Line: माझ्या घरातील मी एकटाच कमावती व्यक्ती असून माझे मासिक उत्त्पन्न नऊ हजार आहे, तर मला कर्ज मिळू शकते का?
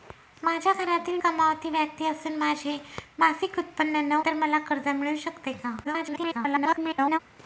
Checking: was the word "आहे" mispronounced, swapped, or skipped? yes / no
yes